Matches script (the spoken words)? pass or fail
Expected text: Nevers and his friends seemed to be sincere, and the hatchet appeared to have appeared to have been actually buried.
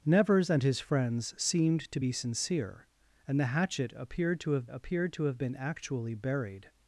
pass